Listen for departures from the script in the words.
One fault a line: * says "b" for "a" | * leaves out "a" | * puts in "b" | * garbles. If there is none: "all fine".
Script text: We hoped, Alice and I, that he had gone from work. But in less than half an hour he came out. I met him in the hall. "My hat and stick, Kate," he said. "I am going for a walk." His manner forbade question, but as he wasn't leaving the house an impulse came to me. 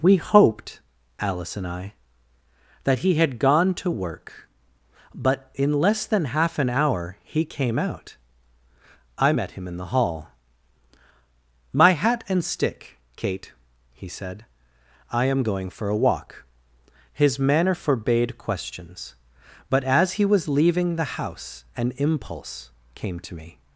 * says "to" for "from"
* says "questions" for "question"
* says "was" for "wasn't"